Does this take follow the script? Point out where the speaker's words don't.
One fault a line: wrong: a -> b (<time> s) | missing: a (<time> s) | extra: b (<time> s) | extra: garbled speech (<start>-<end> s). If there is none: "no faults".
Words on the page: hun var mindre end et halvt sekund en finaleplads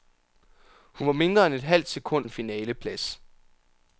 no faults